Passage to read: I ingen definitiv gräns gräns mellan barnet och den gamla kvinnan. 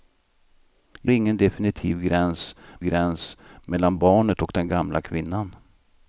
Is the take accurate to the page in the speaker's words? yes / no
yes